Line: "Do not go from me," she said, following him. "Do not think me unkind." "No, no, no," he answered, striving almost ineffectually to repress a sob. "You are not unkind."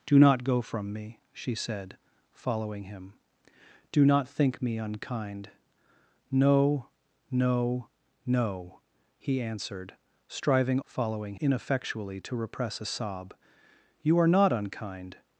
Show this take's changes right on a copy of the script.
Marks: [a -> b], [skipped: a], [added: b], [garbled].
"Do not go from me," she said, following him. "Do not think me unkind." "No, no, no," he answered, striving [almost -> following] ineffectually to repress a sob. "You are not unkind."